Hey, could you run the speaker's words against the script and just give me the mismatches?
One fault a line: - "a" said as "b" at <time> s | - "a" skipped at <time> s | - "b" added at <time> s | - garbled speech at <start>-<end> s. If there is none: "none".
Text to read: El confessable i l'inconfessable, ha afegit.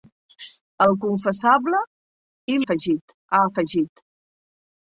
- "l'inconfessable" said as "afegit" at 2.6 s